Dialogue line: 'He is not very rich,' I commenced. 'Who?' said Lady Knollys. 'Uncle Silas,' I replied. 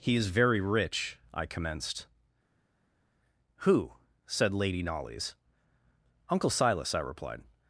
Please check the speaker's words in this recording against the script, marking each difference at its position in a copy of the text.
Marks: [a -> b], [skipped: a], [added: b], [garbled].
'He is [skipped: not] very rich,' I commenced. 'Who?' said Lady Knollys. 'Uncle Silas,' I replied.